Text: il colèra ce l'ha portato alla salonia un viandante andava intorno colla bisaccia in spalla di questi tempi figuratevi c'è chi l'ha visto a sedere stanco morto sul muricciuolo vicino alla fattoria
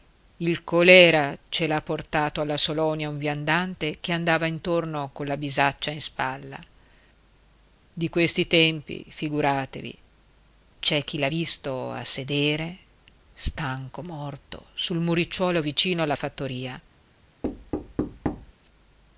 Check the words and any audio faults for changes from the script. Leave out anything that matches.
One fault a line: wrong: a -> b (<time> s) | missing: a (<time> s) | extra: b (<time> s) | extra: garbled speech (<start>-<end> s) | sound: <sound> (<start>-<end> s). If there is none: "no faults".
extra: che (4.0 s)
sound: thud (17.4-18.5 s)